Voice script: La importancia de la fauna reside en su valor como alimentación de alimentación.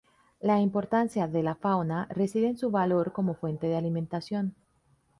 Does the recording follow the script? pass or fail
fail